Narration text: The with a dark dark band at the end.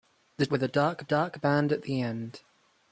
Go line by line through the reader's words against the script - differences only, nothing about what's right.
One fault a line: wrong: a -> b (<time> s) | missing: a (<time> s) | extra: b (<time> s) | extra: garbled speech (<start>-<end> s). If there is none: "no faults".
no faults